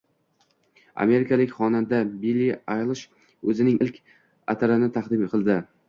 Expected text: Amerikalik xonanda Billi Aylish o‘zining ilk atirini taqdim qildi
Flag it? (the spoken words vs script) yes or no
no